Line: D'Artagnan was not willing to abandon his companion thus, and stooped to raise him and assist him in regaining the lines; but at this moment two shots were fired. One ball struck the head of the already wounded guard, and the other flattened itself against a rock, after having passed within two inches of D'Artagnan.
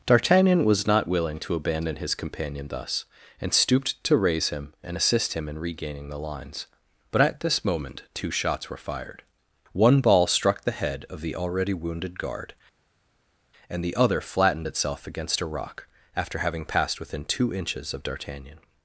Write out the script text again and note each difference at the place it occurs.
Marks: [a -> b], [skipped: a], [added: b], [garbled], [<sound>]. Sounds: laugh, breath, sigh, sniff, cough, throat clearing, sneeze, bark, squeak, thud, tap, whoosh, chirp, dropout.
D'Artagnan was not willing to abandon his companion thus, and stooped to raise him and assist him in regaining the lines; but at this moment two shots were fired. One ball struck the head of the already wounded guard, and the other flattened itself against a rock, after having passed within two inches of D'Artagnan.